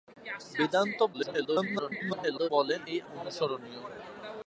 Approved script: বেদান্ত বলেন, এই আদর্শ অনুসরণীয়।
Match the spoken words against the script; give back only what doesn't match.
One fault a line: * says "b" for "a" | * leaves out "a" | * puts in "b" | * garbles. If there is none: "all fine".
* garbles
* leaves out "আদর্শ"